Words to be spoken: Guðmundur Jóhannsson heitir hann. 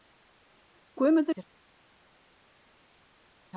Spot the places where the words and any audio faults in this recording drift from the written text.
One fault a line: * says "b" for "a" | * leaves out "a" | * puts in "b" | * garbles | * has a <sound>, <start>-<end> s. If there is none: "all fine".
* leaves out "Jóhannsson heitir"